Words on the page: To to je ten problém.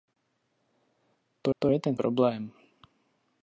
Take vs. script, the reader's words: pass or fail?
pass